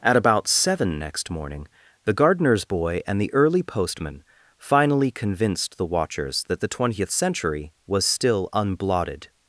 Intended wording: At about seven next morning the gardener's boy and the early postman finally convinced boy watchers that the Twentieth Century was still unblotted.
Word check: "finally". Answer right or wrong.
right